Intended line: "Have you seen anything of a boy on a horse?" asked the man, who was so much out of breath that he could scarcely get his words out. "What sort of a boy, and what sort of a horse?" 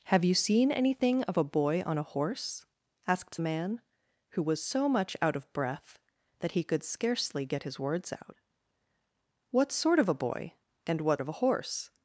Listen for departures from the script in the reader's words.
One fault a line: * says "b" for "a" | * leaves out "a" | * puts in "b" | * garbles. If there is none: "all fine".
* leaves out "the"
* leaves out "sort"